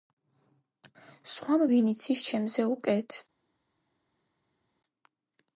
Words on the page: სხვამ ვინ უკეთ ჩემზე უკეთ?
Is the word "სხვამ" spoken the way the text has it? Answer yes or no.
yes